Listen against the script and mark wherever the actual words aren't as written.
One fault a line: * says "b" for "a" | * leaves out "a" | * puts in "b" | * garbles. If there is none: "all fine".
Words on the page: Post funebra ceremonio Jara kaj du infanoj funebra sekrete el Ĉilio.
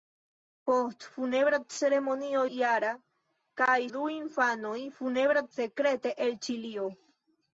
all fine